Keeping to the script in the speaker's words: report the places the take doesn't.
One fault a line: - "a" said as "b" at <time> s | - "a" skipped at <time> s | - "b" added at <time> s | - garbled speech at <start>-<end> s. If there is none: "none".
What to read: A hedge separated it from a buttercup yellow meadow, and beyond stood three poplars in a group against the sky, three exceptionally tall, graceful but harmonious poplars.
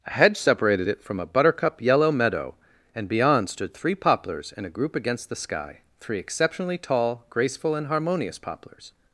- "but" said as "and" at 7.8 s